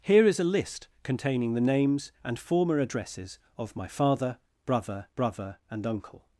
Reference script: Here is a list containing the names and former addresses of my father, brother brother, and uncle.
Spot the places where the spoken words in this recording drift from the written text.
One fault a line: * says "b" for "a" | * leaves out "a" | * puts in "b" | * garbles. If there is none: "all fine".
all fine